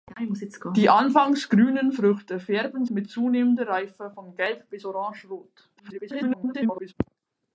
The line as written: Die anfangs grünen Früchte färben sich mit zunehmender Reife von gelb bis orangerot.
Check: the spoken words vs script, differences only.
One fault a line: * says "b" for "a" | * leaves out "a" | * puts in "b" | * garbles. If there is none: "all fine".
* leaves out "sich"
* garbles